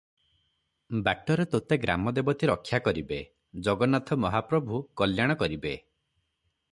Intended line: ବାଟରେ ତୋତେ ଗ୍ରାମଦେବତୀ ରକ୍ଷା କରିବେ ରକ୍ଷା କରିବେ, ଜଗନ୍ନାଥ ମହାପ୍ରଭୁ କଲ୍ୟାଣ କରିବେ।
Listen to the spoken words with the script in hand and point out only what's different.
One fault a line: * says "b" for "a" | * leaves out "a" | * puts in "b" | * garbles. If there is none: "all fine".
* leaves out "ରକ୍ଷା କରିବେ"